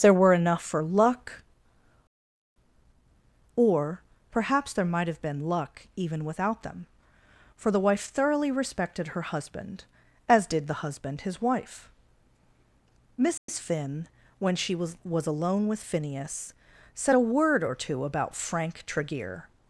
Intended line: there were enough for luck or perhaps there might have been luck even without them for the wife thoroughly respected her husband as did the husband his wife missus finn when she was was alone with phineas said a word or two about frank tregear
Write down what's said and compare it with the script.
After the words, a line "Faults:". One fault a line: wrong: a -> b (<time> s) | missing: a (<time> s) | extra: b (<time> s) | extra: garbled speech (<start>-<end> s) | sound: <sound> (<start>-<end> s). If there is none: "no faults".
there were enough for luck or perhaps there might have been luck even without them for the wife thoroughly respected her husband as did the husband his wife missus finn when she was was alone with phineas said a word or two about frank tregear
Faults:
sound: dropout (13.4-13.5 s)